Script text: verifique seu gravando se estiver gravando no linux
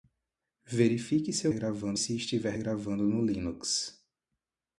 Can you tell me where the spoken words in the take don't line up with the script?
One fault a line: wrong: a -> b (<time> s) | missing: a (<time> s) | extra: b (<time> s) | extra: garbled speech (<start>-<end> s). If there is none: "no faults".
no faults